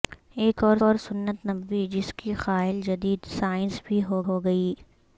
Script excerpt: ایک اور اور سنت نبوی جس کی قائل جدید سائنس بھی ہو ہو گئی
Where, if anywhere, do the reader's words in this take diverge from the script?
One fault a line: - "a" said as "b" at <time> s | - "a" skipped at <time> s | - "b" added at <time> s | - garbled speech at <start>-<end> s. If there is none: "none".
none